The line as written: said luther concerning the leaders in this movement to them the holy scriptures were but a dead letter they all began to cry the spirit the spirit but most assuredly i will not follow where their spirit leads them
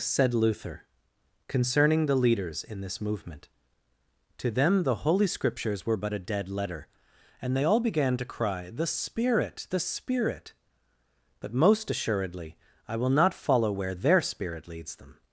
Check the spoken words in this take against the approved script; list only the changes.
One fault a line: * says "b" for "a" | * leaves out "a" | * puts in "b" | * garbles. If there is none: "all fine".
* puts in "and"